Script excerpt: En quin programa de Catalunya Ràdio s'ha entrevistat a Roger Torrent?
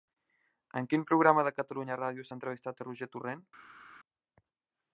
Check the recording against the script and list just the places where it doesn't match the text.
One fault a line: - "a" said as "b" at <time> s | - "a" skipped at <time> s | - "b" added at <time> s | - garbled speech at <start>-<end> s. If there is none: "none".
none